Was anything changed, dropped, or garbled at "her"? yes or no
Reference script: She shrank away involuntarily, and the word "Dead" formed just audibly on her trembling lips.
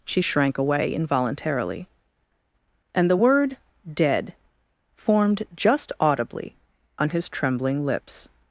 yes